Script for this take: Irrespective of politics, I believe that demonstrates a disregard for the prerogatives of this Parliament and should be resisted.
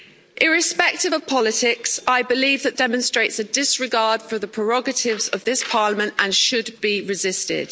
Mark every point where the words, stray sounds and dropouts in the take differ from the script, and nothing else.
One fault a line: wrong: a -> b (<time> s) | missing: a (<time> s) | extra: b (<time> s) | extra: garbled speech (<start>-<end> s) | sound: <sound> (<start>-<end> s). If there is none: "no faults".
no faults